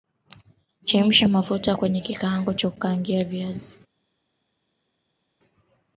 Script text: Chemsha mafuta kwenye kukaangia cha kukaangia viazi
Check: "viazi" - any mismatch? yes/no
no